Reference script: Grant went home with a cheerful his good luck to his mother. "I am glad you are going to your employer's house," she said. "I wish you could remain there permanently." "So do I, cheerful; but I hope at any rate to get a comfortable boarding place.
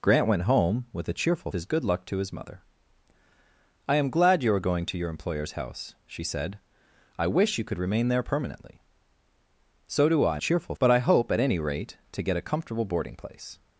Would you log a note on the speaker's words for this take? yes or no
no